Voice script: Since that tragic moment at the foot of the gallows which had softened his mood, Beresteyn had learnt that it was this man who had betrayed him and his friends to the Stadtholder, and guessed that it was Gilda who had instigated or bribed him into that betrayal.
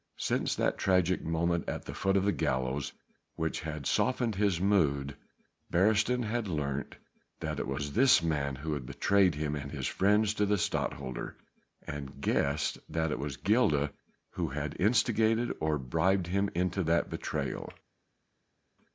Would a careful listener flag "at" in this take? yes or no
no